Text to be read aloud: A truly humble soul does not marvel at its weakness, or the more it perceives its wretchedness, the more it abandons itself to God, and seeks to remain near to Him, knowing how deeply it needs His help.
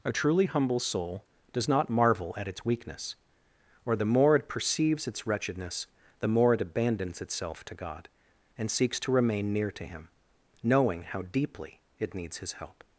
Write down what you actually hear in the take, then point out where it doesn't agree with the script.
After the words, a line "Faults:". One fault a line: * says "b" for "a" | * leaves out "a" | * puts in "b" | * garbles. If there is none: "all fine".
A truly humble soul does not marvel at its weakness, or the more it perceives its wretchedness, the more it abandons itself to God, and seeks to remain near to Him, knowing how deeply it needs His help.
Faults:
all fine